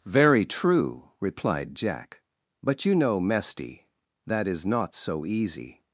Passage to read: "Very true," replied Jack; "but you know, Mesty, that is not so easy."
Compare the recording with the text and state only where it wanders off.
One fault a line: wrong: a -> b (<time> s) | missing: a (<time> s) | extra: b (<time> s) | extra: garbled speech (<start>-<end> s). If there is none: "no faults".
no faults